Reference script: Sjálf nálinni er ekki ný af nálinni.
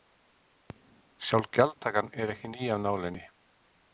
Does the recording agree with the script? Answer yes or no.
no